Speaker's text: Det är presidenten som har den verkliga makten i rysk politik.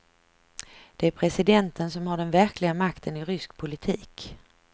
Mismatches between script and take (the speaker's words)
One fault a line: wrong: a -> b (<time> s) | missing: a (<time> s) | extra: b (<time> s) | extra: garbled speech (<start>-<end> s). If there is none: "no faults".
no faults